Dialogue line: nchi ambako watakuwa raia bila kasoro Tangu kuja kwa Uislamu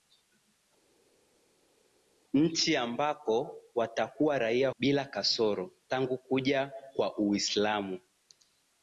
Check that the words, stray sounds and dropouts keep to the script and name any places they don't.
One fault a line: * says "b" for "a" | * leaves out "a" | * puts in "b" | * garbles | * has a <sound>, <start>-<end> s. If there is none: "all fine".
all fine